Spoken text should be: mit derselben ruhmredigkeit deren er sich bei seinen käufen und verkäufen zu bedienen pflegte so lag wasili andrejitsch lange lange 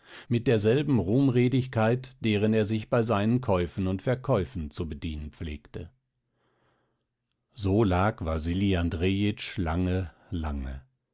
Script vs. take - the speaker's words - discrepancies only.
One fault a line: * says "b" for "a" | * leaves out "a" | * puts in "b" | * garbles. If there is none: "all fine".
all fine